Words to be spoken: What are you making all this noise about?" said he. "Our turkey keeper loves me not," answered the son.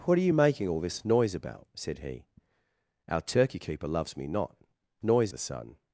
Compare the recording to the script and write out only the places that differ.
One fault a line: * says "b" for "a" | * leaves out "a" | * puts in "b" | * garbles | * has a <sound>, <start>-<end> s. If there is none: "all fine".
* says "noise" for "answered"